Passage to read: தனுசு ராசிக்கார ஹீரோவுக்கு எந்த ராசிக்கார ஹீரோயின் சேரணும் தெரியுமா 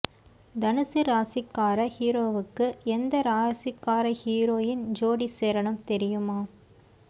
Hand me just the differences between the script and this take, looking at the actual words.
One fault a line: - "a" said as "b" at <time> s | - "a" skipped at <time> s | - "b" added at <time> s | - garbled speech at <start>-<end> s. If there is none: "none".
- "ஜோடி" added at 5.0 s